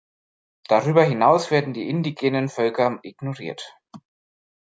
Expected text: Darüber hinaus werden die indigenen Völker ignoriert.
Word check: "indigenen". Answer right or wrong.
right